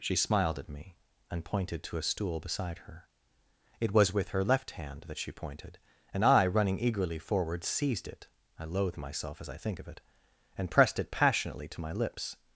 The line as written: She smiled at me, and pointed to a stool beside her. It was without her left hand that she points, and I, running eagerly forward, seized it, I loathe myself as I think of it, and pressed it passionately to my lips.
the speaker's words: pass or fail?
fail